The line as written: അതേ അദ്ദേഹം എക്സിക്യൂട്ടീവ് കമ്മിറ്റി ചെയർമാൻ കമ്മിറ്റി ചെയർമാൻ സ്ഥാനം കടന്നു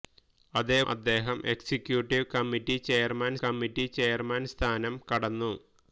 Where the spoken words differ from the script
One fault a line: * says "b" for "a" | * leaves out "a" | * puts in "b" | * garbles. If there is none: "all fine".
all fine